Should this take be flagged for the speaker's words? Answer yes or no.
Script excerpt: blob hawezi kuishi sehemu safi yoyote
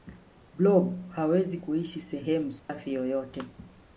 no